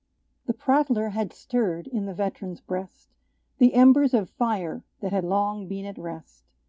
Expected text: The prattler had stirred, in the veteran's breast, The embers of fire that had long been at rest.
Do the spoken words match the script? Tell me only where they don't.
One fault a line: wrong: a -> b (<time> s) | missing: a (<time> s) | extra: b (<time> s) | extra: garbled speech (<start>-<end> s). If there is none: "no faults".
no faults